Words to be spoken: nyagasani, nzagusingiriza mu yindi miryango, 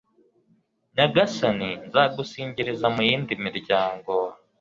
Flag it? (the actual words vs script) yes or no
no